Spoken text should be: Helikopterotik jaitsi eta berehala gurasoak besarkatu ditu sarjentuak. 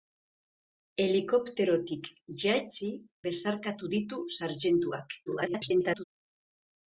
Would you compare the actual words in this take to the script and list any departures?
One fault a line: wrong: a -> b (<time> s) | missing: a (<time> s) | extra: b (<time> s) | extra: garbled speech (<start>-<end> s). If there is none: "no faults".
missing: eta berehala gurasoak (2.9 s)
extra: garbled speech (5.3-6.0 s)